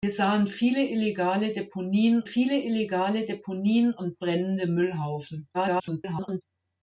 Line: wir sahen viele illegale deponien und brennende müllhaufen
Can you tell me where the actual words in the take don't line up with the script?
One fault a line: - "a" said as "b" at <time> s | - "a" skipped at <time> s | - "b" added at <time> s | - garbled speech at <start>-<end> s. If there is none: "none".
- "viele illegale deponien" added at 2.2 s
- garbled speech at 5.5-6.4 s